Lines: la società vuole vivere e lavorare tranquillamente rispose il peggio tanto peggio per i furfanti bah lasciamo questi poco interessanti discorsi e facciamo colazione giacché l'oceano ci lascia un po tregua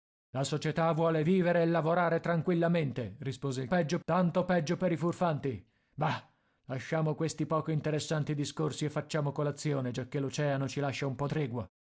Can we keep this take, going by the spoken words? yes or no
yes